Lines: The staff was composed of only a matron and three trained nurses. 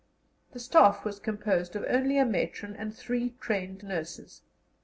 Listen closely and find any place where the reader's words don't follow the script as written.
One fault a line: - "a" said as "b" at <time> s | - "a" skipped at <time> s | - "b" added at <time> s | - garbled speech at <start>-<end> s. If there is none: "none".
none